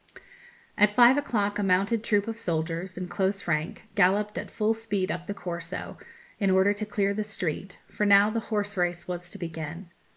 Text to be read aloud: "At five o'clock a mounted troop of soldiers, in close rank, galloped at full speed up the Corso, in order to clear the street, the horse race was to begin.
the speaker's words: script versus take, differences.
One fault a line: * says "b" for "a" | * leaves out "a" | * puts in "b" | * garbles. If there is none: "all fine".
* puts in "for now"